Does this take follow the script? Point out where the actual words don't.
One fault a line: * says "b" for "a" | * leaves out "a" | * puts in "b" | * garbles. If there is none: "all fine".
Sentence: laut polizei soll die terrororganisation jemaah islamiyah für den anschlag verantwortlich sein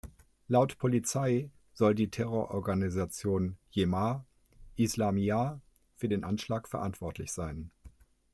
all fine